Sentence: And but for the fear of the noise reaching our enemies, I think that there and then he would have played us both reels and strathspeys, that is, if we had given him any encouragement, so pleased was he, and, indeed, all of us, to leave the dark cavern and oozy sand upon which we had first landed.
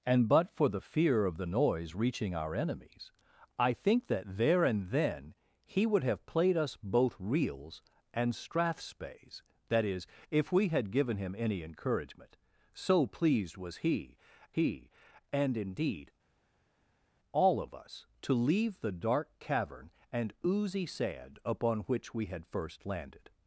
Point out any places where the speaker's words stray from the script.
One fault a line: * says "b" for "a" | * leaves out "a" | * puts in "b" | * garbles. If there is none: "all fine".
* puts in "he"